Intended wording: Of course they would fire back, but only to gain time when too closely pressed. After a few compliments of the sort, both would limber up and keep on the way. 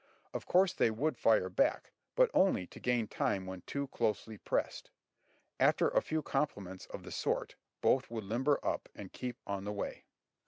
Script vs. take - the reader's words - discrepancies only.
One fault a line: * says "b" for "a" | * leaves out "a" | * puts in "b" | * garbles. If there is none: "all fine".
all fine